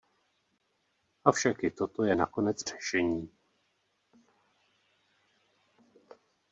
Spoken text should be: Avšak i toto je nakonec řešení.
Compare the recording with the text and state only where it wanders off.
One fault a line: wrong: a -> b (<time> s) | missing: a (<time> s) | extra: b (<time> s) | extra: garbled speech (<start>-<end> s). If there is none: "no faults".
no faults